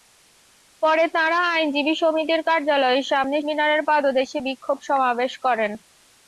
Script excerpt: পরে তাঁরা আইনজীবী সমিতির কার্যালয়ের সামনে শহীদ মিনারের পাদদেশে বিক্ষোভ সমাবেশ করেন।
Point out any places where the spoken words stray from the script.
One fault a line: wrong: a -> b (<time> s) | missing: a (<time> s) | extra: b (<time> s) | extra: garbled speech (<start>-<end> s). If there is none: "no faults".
missing: শহীদ (3.4 s)